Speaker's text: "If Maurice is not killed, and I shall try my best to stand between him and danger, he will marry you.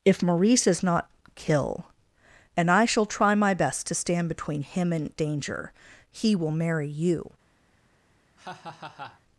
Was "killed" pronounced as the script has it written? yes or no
no